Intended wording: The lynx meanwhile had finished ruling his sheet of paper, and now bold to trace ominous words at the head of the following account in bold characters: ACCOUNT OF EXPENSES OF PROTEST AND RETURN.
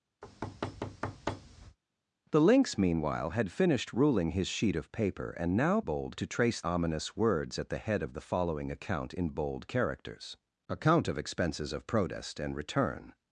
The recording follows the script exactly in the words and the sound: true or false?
false